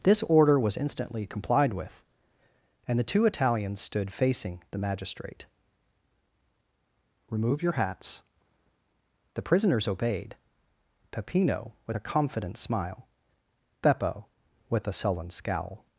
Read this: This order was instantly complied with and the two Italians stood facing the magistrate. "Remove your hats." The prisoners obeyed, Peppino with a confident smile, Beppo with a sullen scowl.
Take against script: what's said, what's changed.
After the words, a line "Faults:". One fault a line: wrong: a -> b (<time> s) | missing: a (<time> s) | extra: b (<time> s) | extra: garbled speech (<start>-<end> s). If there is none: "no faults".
This order was instantly complied with and the two Italians stood facing the magistrate. "Remove your hats." The prisoners obeyed, Peppino with a confident smile, Beppo with a sullen scowl.
Faults:
no faults